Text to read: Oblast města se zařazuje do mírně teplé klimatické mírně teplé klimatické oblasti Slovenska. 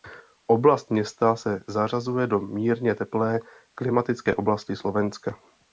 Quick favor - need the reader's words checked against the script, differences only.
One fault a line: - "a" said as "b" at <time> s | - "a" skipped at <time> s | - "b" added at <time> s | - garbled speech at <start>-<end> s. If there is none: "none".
- "mírně teplé klimatické" skipped at 4.4 s